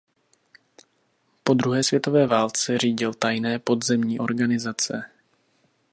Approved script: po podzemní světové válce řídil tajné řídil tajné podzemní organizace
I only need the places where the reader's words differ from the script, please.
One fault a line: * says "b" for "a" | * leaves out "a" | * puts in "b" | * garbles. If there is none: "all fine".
* says "druhé" for "podzemní"
* leaves out "řídil tajné"